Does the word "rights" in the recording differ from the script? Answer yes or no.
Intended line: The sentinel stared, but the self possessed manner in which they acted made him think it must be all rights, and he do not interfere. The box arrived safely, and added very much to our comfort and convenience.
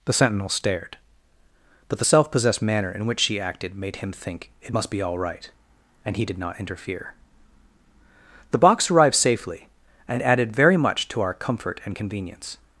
yes